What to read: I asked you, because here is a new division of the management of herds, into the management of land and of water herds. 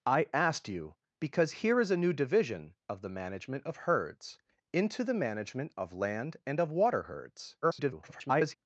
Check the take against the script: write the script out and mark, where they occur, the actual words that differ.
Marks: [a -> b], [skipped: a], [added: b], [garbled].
I asked you, because here is a new division of the management of herds, into the management of land and of water herds. [garbled]